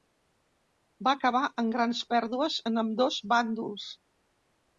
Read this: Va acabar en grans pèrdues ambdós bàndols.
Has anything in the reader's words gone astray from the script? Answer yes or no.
yes